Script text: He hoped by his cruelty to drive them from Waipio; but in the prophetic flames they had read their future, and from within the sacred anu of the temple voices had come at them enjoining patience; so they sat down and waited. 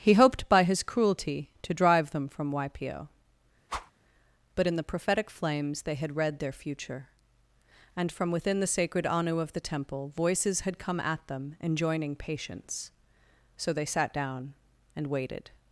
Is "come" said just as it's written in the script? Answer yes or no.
yes